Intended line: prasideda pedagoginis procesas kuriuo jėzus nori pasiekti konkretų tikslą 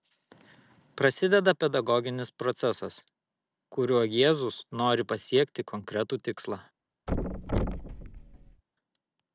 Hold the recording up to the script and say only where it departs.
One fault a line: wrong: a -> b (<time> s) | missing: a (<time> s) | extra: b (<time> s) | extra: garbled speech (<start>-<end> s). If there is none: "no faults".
no faults